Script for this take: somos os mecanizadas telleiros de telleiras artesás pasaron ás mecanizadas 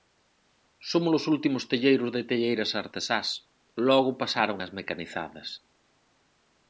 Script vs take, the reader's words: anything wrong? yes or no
yes